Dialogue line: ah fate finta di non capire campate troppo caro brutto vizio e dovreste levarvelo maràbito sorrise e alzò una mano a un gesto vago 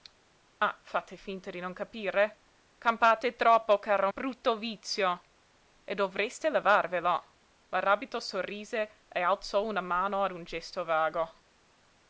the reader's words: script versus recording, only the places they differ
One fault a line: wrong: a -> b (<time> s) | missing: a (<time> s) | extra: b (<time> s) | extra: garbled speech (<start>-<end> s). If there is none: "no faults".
no faults